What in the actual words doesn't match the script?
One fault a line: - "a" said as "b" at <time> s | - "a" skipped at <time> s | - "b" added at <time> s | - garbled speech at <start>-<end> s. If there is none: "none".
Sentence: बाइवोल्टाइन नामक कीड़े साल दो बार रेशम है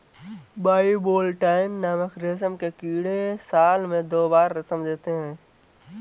- "रेशम के" added at 2.2 s
- "में" added at 3.9 s
- "देते" added at 4.8 s